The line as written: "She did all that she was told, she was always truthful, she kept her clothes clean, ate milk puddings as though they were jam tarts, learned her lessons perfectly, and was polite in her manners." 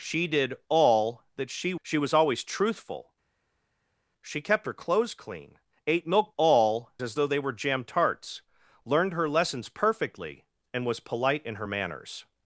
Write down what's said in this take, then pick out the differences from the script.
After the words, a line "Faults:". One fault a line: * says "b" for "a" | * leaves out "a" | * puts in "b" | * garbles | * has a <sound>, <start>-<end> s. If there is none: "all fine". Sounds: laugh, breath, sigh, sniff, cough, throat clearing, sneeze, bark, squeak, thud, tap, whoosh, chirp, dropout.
"She did all that she she was always truthful, she kept her clothes clean, ate milk all as though they were jam tarts, learned her lessons perfectly, and was polite in her manners."
Faults:
* leaves out "was told"
* says "all" for "puddings"